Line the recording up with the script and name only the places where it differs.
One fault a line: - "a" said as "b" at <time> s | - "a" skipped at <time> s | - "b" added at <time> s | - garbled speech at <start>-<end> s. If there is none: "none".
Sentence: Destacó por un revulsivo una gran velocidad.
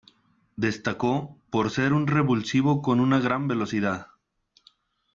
- "ser" added at 1.7 s
- "con" added at 2.8 s